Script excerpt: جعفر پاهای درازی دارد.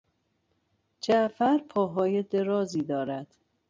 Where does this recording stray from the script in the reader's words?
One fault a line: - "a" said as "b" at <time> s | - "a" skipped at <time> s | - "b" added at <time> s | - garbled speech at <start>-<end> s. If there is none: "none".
none